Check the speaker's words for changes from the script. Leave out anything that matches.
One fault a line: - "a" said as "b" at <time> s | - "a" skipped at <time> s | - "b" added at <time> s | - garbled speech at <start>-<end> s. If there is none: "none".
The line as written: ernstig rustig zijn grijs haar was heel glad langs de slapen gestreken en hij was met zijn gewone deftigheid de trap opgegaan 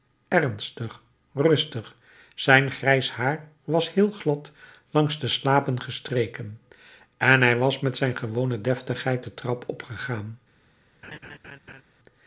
none